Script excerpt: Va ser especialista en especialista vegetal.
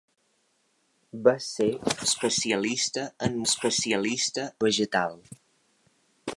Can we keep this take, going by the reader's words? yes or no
yes